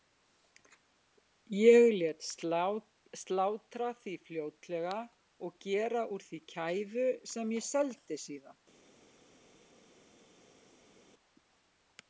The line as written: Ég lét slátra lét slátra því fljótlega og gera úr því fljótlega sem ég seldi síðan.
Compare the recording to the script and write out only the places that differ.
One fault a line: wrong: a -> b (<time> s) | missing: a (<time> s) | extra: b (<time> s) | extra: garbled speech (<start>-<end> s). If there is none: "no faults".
missing: lét slátra (3.9 s)
wrong: fljótlega -> kæfu (6.5 s)